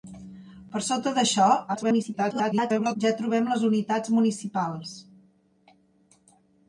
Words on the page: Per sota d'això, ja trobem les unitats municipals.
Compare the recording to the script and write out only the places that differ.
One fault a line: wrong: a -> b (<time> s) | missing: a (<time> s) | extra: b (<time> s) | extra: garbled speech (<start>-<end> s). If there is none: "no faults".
extra: garbled speech (1.7-3.0 s)